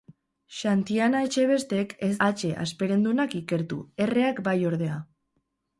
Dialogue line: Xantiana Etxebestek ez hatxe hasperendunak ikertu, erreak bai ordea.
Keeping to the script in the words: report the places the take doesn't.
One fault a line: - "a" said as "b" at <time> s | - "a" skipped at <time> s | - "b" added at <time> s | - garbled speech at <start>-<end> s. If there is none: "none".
none